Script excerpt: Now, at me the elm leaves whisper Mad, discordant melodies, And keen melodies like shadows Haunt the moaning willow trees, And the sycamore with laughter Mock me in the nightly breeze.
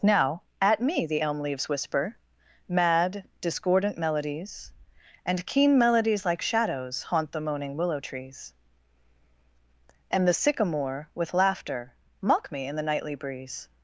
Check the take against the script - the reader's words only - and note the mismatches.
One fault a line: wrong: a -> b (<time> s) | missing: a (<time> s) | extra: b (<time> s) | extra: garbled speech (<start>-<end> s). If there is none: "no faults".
no faults